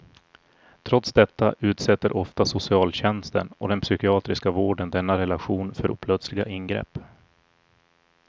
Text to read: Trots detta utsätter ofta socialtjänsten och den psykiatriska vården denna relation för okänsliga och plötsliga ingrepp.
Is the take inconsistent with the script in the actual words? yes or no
yes